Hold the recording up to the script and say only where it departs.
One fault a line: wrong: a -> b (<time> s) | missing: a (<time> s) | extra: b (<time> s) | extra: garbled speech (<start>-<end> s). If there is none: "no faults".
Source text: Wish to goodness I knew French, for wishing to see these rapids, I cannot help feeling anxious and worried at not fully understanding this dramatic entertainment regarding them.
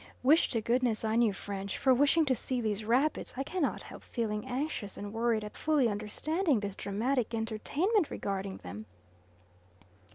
missing: not (5.6 s)